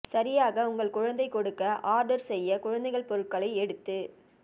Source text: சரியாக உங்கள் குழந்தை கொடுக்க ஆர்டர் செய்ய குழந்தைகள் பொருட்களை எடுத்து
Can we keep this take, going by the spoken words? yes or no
yes